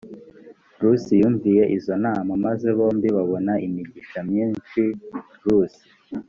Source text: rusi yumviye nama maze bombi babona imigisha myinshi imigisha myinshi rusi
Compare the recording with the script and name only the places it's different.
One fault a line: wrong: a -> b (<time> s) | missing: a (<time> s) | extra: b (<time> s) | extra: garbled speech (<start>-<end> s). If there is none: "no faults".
extra: izo (1.8 s)
missing: imigisha myinshi (4.8 s)